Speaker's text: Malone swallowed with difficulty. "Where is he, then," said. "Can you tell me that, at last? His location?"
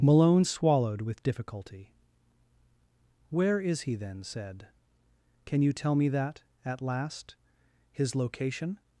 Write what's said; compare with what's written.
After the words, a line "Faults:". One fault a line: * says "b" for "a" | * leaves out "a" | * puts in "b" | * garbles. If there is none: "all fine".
Malone swallowed with difficulty. "Where is he, then," said. "Can you tell me that, at last? His location?"
Faults:
all fine